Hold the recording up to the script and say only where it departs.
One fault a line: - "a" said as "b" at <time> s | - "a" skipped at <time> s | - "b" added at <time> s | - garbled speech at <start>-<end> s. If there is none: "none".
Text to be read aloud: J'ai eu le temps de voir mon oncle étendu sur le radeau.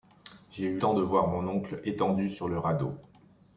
- "le" skipped at 0.8 s